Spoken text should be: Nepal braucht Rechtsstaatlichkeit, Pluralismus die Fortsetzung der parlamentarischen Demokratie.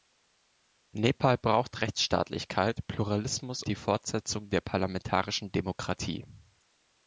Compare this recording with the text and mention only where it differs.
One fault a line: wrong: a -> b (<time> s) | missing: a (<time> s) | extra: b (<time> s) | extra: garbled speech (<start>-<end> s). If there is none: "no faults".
no faults